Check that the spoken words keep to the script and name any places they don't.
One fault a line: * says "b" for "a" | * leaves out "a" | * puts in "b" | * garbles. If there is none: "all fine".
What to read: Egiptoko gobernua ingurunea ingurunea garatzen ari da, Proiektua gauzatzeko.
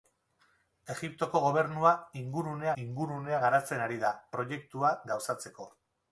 all fine